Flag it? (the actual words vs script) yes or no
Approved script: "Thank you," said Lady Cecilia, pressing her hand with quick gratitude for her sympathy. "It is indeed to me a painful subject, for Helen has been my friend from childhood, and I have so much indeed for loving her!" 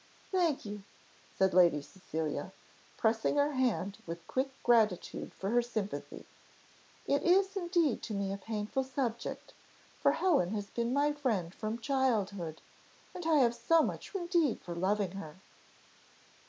no